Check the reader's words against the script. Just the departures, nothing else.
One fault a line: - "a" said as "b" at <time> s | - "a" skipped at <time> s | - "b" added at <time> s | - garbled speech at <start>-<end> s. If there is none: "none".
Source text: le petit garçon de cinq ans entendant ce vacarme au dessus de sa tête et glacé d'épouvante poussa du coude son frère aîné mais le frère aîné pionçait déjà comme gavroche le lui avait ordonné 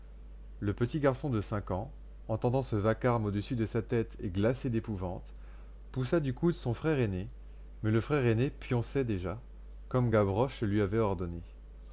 none